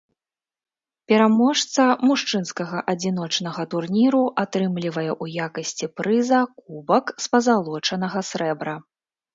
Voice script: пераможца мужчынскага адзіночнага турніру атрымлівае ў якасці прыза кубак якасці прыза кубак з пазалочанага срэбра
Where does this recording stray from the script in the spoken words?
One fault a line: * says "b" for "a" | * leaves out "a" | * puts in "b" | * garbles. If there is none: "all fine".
* leaves out "якасці прыза кубак"